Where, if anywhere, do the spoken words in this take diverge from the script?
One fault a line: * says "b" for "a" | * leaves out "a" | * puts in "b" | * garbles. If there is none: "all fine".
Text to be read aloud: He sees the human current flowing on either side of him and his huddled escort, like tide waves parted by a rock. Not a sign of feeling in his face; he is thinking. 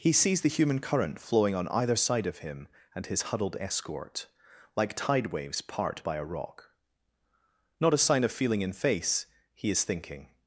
* says "part" for "parted"
* leaves out "his"